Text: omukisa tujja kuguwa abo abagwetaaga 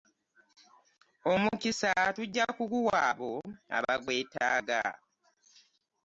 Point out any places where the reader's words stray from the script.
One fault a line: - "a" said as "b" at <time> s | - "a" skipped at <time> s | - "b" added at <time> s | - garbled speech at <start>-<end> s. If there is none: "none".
none